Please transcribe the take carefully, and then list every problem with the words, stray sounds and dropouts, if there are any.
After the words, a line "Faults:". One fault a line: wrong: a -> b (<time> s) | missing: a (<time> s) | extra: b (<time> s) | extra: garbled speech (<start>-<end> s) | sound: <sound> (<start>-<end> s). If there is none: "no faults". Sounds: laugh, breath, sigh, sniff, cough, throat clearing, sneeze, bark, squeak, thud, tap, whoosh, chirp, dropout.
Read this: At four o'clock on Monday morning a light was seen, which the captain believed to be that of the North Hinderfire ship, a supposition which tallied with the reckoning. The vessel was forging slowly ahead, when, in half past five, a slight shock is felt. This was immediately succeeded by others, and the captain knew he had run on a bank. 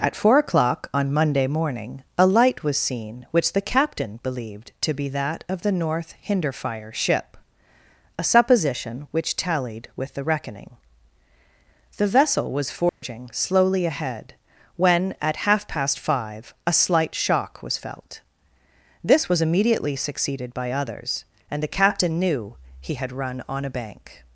At four o'clock on Monday morning a light was seen, which the captain believed to be that of the North Hinderfire ship, a supposition which tallied with the reckoning. The vessel was forging slowly ahead, when, at half past five, a slight shock was felt. This was immediately succeeded by others, and the captain knew he had run on a bank.
Faults:
sound: dropout (12.9-13.0 s)
wrong: in -> at (15.2 s)
wrong: is -> was (17.6 s)